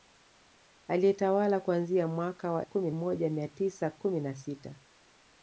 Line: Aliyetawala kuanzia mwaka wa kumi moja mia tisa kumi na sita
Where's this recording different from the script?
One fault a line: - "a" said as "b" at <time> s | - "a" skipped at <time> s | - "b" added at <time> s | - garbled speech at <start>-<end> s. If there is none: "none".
none